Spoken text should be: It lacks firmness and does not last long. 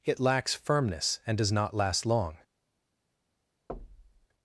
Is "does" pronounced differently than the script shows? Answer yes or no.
no